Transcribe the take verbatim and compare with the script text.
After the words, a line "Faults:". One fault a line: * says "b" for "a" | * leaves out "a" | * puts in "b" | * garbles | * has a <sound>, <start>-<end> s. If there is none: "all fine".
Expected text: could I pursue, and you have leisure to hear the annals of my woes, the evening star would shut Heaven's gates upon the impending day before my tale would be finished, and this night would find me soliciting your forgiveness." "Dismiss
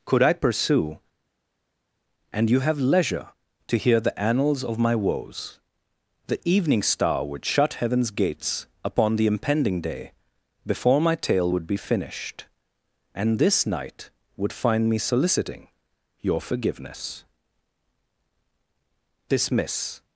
could I pursue, and you have leisure to hear the annals of my woes, the evening star would shut Heaven's gates upon the impending day before my tale would be finished, and this night would find me soliciting your forgiveness." "Dismiss
Faults:
all fine